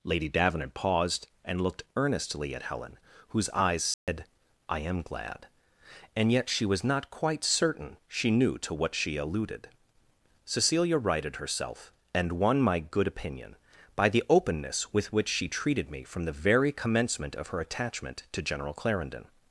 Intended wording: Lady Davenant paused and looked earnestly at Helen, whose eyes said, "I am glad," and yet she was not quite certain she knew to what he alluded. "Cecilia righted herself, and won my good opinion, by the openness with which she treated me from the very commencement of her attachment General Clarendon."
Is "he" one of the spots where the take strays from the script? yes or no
yes